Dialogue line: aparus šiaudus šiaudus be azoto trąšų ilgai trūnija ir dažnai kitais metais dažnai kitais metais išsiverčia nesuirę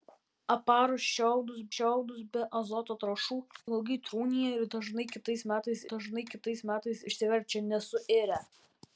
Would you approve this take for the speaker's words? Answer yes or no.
yes